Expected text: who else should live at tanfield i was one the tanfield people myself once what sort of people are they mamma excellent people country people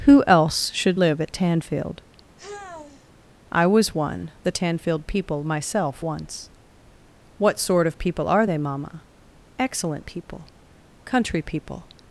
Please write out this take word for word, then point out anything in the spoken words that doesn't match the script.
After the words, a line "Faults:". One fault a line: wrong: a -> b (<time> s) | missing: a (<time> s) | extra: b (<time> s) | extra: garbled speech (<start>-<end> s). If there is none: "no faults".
who else should live at tanfield i was one the tanfield people myself once what sort of people are they mamma excellent people country people
Faults:
no faults